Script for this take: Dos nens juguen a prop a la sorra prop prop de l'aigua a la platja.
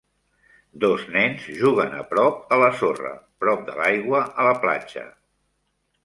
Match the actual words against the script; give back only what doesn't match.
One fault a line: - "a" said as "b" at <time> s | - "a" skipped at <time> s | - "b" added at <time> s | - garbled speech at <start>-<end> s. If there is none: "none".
- "prop" skipped at 3.6 s